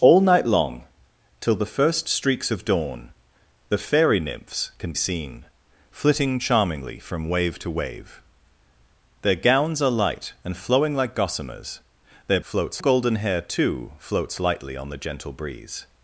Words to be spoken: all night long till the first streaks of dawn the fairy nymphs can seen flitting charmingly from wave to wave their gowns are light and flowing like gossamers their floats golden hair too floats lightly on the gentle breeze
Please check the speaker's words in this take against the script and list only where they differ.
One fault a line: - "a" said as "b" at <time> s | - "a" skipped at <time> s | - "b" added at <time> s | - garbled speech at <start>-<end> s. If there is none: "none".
none